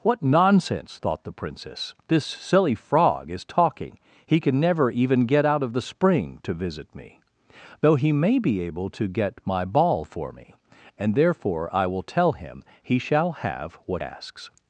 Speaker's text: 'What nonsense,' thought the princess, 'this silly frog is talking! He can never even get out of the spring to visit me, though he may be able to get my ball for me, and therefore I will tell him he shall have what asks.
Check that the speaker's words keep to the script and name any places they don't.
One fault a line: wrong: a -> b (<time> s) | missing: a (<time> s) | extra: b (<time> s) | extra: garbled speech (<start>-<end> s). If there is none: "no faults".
no faults